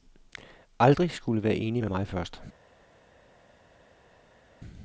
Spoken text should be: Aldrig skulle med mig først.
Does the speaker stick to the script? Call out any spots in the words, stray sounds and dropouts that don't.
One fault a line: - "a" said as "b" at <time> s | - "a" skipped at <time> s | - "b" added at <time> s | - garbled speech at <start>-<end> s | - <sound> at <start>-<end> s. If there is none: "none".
- "være enig" added at 1.4 s